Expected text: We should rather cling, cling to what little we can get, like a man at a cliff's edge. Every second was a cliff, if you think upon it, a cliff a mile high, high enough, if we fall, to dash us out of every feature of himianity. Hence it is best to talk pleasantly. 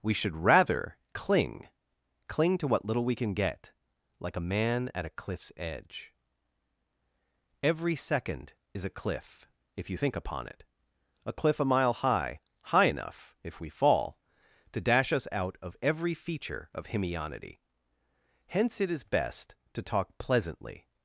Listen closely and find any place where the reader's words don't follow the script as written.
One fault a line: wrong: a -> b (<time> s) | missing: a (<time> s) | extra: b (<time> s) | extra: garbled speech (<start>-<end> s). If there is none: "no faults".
wrong: was -> is (8.7 s)